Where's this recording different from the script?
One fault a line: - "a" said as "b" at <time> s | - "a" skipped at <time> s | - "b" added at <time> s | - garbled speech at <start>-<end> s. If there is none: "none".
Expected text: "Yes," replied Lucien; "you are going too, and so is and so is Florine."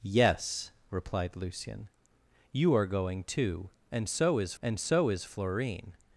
none